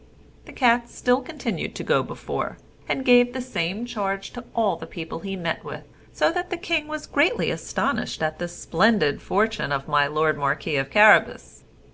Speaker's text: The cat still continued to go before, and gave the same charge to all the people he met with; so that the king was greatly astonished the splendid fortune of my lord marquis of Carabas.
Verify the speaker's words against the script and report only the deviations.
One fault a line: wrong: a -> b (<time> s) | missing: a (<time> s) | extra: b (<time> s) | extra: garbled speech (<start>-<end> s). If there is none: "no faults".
extra: at (8.2 s)